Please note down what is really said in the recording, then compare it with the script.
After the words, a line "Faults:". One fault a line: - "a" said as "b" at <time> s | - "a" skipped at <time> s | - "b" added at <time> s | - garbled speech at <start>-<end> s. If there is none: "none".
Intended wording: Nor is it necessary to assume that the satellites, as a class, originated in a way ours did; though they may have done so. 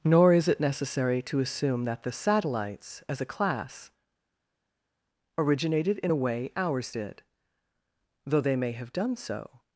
Nor is it necessary to assume that the satellites, as a class, originated in a way ours did; though they may have done so.
Faults:
none